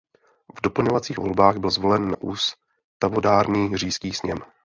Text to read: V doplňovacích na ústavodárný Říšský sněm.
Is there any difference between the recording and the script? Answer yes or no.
yes